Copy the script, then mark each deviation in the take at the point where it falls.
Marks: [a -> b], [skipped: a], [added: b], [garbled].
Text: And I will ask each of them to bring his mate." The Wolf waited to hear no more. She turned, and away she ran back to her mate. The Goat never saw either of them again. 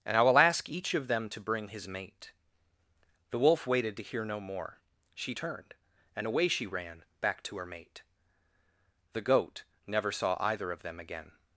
And I will ask each of them to bring his mate." The Wolf waited to hear no more. She turned, and away she ran back to her mate. The Goat never saw either of them again.